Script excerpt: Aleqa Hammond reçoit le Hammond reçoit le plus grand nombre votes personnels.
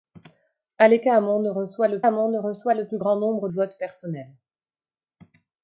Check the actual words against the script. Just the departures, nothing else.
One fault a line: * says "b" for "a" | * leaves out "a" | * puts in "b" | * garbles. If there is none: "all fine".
all fine